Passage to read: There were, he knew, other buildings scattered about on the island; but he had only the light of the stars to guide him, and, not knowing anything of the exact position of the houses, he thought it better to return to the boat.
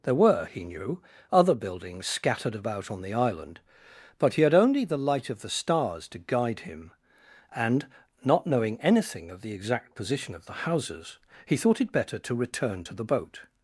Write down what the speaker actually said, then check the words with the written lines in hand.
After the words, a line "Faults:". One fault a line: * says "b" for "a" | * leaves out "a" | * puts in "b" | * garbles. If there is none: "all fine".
There were, he knew, other buildings scattered about on the island; but he had only the light of the stars to guide him, and, not knowing anything of the exact position of the houses, he thought it better to return to the boat.
Faults:
all fine